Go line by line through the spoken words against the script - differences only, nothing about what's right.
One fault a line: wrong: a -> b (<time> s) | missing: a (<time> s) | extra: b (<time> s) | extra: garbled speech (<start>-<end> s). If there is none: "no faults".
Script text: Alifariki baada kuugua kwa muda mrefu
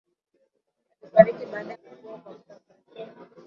no faults